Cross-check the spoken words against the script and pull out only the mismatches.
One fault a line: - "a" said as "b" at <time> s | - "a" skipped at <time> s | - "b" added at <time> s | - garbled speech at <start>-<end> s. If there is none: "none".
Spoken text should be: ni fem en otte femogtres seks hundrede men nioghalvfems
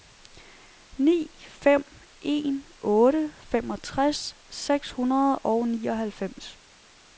- "men" said as "og" at 5.4 s